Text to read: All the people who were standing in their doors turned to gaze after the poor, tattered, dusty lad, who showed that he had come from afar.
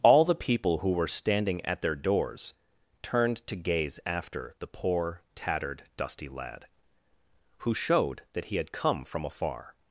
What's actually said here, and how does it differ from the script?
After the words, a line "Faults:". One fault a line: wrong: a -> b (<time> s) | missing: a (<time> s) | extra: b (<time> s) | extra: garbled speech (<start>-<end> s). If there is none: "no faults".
All the people who were standing at their doors turned to gaze after the poor, tattered, dusty lad, who showed that he had come from afar.
Faults:
wrong: in -> at (1.6 s)